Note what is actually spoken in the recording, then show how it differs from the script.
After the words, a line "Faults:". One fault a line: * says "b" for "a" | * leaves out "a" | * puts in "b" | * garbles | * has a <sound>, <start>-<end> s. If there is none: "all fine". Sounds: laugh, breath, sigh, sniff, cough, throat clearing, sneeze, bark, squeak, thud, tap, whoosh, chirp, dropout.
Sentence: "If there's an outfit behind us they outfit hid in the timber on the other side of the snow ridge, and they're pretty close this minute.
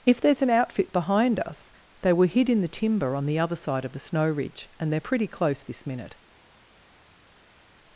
"If there's an outfit behind us they were hid in the timber on the other side of the snow ridge, and they're pretty close this minute.
Faults:
* says "were" for "outfit"